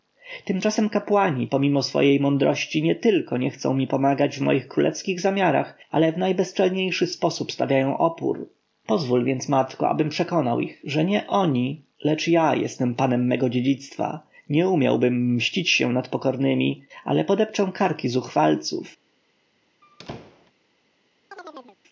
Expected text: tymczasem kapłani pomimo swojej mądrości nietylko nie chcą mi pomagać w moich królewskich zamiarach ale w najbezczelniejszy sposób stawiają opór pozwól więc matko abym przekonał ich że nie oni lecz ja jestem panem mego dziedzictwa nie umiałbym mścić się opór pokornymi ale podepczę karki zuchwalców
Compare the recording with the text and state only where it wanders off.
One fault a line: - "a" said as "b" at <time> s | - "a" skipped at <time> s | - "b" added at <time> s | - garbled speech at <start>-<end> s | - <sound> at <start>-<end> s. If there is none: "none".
- "opór" said as "nad" at 15.9 s
- squeak at 19.8-20.5 s
- chirp at 21.3-21.8 s